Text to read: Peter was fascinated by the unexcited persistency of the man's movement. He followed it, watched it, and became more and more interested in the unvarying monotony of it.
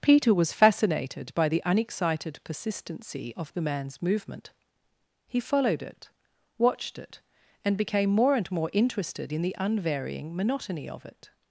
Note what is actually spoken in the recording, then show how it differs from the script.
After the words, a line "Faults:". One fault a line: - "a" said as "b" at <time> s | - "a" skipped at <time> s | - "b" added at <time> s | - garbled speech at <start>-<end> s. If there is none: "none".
Peter was fascinated by the unexcited persistency of the man's movement. He followed it, watched it, and became more and more interested in the unvarying monotony of it.
Faults:
none